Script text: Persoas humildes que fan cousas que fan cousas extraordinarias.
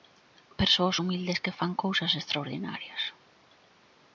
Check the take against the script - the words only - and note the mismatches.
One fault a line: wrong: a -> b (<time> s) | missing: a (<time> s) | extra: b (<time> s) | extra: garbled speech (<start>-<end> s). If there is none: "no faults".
missing: que fan cousas (2.1 s)